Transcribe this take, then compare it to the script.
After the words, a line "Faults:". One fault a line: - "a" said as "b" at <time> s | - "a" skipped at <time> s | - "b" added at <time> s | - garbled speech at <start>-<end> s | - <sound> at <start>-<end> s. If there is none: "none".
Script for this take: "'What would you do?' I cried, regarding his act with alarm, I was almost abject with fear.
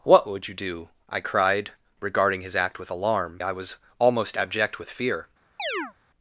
"'What would you do?' I cried, regarding his act with alarm, I was almost abject with fear.
Faults:
- chirp at 5.6-5.9 s